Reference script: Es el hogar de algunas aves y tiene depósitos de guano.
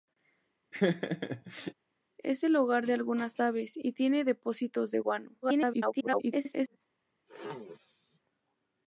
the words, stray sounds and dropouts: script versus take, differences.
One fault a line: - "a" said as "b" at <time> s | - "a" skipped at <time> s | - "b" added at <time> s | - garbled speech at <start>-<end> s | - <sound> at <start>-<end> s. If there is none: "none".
- laugh at 0.7-1.7 s
- garbled speech at 5.4-6.8 s
- throat clearing at 7.3-8.2 s